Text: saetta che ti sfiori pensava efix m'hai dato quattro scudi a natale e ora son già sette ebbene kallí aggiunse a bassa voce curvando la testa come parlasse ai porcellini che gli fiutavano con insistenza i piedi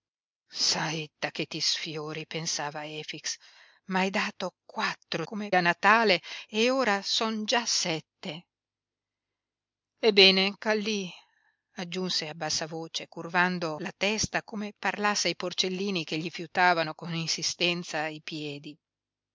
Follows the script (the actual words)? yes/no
no